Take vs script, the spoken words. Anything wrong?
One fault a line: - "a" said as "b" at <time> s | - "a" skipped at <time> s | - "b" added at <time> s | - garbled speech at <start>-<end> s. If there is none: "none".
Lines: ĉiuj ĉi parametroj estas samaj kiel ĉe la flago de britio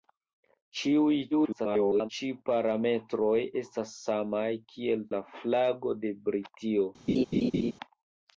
- garbled speech at 1.3-2.1 s
- "ĉe" skipped at 5.1 s